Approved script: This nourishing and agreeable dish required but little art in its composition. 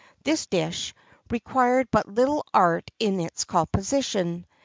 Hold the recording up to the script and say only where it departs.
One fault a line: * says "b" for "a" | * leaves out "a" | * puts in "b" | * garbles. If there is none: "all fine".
* leaves out "nourishing and agreeable"